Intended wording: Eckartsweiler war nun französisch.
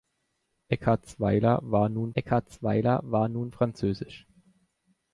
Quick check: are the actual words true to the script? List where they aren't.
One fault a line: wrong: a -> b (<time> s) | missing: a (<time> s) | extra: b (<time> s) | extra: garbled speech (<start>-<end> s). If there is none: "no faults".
extra: eckartsweiler war nun (2.1 s)